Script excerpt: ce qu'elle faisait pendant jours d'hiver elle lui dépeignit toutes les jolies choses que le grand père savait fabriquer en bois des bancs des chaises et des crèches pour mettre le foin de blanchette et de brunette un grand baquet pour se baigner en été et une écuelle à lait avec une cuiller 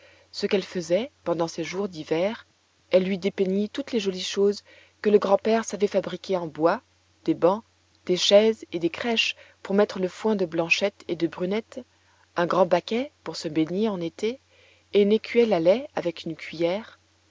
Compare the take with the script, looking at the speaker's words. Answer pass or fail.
fail